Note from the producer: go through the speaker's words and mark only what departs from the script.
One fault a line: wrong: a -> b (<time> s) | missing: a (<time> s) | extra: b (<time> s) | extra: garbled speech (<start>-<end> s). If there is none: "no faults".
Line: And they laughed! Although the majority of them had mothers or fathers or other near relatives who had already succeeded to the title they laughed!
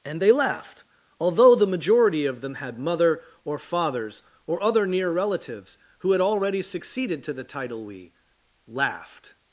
wrong: mothers -> mother (2.8 s)
wrong: they -> we (7.8 s)